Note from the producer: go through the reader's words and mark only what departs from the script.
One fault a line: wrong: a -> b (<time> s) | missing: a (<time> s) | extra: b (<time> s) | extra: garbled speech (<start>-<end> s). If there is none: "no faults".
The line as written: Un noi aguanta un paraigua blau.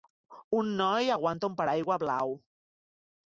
no faults